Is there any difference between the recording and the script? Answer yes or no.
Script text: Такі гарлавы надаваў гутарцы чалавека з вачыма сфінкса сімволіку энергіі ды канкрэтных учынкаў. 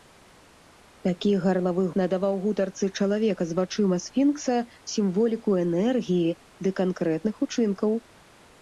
no